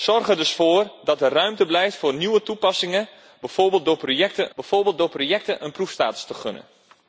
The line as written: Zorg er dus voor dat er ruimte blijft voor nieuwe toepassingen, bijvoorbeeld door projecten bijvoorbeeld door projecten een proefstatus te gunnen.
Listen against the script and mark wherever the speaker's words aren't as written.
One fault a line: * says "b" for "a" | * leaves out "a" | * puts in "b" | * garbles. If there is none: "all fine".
all fine